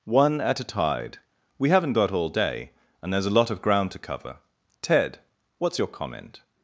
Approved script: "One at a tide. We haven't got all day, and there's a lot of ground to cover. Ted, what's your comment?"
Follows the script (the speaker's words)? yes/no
yes